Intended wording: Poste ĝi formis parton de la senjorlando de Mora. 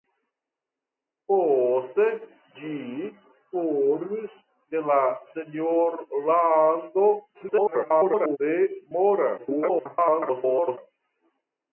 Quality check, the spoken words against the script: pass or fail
fail